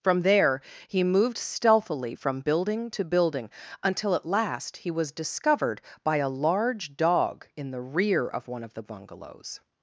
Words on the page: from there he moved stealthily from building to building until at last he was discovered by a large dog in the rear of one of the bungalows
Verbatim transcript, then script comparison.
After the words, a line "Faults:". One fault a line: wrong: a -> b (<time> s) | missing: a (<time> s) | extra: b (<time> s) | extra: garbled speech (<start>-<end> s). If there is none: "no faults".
from there he moved stealthily from building to building until at last he was discovered by a large dog in the rear of one of the bungalows
Faults:
no faults